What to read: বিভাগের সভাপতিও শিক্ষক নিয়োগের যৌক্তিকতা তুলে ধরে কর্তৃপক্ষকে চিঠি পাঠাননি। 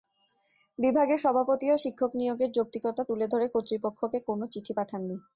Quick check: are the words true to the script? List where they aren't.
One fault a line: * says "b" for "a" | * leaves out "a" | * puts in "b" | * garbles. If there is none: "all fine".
* puts in "কোনো"